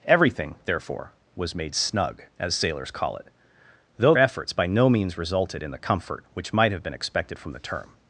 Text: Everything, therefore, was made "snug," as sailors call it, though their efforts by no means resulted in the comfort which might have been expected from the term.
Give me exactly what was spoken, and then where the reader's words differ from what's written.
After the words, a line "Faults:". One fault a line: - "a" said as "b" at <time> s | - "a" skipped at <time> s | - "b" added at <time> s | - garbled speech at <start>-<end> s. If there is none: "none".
Everything, therefore, was made "snug," as sailors call it, though efforts by no means resulted in the comfort which might have been expected from the term.
Faults:
- "their" skipped at 4.1 s